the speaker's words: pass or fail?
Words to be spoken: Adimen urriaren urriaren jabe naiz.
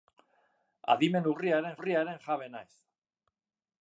pass